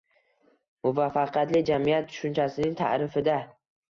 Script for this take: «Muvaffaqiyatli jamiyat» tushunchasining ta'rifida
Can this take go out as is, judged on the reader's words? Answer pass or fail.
pass